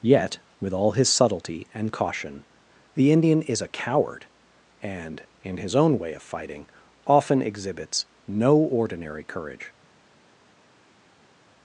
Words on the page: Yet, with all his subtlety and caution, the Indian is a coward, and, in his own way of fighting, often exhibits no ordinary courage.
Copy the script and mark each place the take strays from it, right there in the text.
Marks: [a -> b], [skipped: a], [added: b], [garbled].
Yet, with all his subtlety and caution, the Indian is a coward, and, in his own way of fighting, often exhibits no ordinary courage.